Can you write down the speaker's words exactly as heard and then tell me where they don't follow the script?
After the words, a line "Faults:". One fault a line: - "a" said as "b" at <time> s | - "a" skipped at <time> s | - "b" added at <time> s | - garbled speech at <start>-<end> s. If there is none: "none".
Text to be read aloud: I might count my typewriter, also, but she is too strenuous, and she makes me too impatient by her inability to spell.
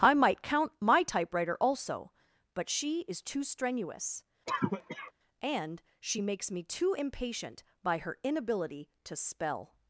I might count my typewriter, also, but she is too strenuous, and she makes me too impatient by her inability to spell.
Faults:
none